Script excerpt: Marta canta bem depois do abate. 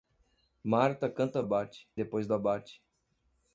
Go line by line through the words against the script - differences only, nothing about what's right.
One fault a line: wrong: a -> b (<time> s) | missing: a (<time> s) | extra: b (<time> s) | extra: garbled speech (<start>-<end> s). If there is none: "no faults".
wrong: bem -> abate (1.4 s)